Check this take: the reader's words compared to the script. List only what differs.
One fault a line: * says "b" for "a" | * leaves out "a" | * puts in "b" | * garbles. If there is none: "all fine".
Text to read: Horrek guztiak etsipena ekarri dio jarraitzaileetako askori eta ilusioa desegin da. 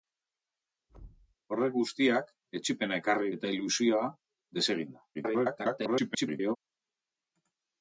* leaves out "dio jarraitzaileetako askori"
* garbles